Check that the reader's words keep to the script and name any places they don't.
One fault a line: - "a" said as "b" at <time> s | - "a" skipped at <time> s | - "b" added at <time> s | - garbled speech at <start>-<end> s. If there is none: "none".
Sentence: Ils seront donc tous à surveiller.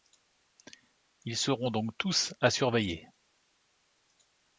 none